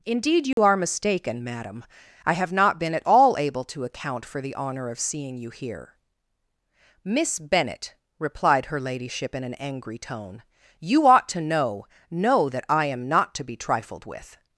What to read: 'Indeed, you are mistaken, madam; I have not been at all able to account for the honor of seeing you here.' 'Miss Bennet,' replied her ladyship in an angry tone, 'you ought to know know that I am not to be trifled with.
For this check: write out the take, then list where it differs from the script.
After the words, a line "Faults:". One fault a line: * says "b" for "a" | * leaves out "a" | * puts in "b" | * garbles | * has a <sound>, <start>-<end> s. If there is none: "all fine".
'Indeed, you are mistaken, madam; I have not been at all able to account for the honor of seeing you here.' 'Miss Bennet,' replied her ladyship in an angry tone, 'you ought to know know that I am not to be trifled with.
Faults:
* has a dropout, 0.5-0.6 s